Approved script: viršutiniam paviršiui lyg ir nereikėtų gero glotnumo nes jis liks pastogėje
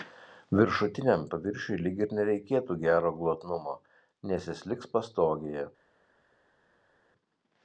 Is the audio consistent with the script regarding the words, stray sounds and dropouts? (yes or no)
yes